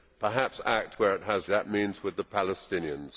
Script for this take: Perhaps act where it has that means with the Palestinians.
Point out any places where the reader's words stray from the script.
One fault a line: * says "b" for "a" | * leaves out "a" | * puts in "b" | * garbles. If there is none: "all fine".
all fine